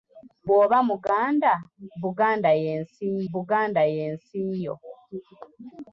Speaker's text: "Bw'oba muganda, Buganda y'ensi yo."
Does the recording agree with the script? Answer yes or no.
no